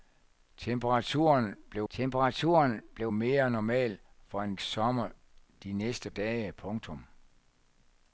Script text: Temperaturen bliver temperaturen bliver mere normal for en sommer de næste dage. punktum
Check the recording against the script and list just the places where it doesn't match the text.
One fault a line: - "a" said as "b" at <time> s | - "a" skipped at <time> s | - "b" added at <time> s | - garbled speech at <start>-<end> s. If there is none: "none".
none